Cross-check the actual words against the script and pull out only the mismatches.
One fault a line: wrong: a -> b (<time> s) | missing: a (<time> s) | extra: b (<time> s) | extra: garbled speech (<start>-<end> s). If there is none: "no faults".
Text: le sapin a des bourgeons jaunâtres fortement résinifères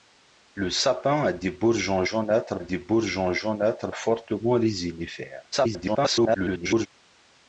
extra: des bourgeons jaunâtres (2.6 s)
extra: garbled speech (5.5-6.9 s)